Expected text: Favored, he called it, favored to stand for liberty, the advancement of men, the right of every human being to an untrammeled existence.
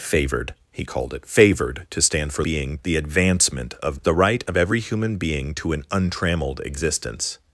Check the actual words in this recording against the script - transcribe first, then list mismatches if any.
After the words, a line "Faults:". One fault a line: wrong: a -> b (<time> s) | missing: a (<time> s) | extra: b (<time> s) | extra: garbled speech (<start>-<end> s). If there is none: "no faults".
Favored, he called it, favored to stand for being, the advancement of the right of every human being to an untrammeled existence.
Faults:
wrong: liberty -> being (2.4 s)
missing: men (4.0 s)